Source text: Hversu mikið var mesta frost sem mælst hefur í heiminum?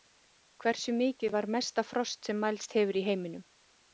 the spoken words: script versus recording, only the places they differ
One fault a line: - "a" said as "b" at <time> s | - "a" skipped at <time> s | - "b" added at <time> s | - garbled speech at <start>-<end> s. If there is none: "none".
none